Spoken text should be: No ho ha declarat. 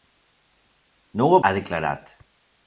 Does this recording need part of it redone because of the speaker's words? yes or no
no